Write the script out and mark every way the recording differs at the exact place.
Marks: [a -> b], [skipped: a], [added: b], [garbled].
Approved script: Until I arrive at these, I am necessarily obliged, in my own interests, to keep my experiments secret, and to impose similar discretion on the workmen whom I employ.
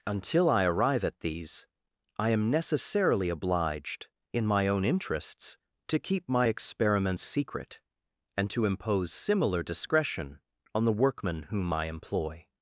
Until I arrive at these, I am necessarily obliged, in my own interests, to keep my experiments secret, and to impose similar discretion on the workmen whom I employ.